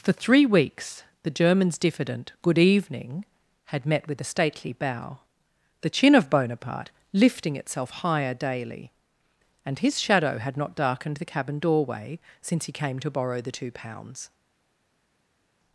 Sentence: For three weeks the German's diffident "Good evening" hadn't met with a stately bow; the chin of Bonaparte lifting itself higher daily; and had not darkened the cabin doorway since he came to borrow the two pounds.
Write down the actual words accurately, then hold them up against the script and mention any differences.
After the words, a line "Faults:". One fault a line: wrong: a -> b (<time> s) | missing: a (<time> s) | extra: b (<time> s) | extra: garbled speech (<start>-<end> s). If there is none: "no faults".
For three weeks the German's diffident "Good evening" had met with a stately bow; the chin of Bonaparte lifting itself higher daily; and his shadow had not darkened the cabin doorway since he came to borrow the two pounds.
Faults:
wrong: hadn't -> had (3.6 s)
extra: his shadow (9.8 s)